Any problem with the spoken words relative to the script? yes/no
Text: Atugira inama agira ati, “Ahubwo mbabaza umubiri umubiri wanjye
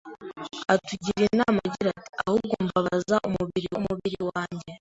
no